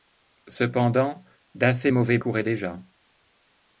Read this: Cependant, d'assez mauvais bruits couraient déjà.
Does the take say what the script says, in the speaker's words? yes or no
no